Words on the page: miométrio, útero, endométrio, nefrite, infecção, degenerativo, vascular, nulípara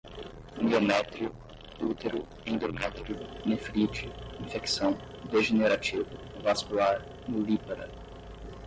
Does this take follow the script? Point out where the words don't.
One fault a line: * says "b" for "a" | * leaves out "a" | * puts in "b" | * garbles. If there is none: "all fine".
all fine